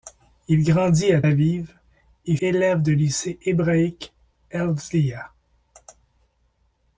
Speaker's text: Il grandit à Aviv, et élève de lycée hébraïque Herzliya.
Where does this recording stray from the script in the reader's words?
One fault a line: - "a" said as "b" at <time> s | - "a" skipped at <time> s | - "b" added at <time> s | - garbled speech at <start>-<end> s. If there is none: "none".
none